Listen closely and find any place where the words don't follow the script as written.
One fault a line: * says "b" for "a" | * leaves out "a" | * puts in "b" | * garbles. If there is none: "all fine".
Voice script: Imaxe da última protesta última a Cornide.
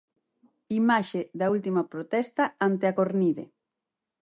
* says "ante" for "última"